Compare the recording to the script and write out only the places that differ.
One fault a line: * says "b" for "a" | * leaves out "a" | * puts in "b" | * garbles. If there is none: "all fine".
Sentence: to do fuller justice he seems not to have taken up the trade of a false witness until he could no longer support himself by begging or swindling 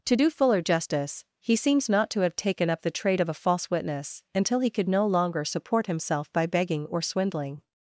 all fine